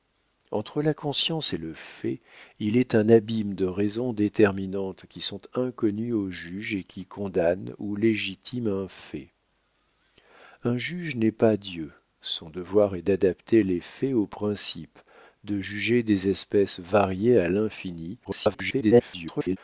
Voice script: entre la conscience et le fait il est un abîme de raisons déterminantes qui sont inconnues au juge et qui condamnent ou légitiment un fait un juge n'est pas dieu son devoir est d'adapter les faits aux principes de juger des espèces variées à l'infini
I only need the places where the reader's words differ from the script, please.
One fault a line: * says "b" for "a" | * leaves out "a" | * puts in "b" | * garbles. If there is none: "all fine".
* garbles